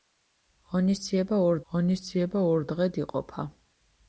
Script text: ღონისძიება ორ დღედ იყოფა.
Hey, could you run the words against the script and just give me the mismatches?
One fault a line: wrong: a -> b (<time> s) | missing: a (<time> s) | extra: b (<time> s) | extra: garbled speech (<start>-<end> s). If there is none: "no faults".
extra: ღონისძიება ორ (1.7 s)